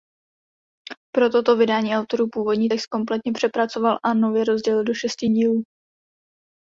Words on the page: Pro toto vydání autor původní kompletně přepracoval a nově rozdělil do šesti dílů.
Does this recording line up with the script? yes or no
no